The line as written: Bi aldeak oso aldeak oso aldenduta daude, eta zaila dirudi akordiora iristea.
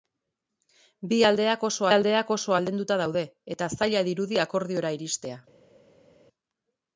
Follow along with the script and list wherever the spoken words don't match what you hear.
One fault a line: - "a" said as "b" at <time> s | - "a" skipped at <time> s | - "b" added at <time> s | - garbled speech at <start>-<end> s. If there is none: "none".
none